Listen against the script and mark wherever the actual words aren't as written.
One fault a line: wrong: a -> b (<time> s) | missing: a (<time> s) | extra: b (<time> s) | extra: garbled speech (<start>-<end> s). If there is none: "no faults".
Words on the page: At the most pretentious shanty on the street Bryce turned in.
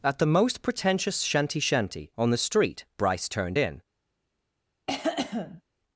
extra: shanty (1.6 s)